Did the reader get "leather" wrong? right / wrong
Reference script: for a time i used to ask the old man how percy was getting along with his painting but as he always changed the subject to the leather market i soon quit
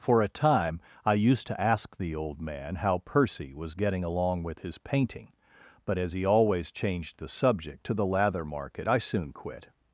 wrong